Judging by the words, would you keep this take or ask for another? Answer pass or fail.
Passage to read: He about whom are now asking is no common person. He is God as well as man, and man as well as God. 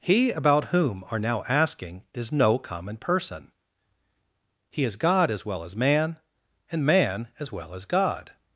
pass